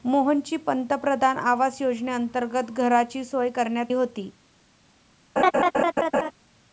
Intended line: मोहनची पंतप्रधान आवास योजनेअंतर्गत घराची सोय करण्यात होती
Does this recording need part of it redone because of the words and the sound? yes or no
yes